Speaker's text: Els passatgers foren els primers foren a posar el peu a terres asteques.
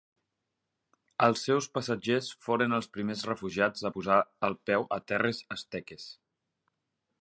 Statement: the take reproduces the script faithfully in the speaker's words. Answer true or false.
false